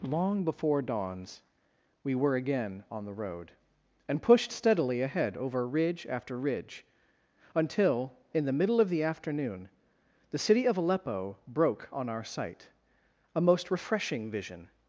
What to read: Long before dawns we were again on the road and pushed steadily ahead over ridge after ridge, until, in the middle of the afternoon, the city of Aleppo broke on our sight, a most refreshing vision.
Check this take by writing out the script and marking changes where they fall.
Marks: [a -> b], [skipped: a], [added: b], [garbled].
Long before dawns we were again on the road and pushed steadily ahead over ridge after ridge, until, in the middle of the afternoon, the city of Aleppo broke on our sight, a most refreshing vision.